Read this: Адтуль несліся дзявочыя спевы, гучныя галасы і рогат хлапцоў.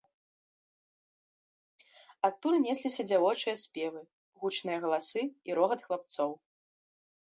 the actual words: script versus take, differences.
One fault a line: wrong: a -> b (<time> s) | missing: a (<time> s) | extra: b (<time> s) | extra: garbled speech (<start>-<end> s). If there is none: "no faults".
no faults